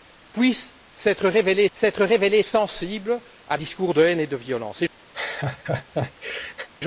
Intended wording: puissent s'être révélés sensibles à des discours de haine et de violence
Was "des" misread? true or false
true